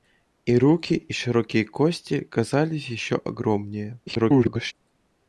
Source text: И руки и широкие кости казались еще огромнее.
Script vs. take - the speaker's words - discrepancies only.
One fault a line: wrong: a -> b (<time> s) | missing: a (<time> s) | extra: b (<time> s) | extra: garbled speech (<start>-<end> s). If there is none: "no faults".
extra: garbled speech (4.1-4.7 s)